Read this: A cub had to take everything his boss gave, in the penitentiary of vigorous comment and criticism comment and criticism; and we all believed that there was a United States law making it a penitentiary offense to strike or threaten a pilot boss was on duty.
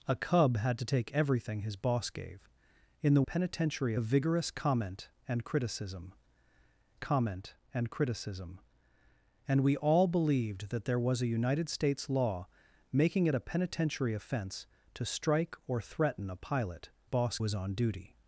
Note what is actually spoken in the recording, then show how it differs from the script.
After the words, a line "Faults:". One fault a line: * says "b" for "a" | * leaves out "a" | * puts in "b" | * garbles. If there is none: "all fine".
A cub had to take everything his boss gave, in the penitentiary of vigorous comment and criticism comment and criticism; and we all believed that there was a United States law making it a penitentiary offense to strike or threaten a pilot boss was on duty.
Faults:
all fine